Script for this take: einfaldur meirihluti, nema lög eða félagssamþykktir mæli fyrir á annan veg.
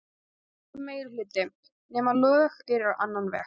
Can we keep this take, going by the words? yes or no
no